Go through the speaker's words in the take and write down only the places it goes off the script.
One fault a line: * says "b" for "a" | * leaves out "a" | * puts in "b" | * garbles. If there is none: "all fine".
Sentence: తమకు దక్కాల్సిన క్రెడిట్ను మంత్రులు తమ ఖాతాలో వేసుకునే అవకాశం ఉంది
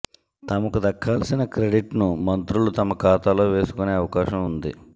all fine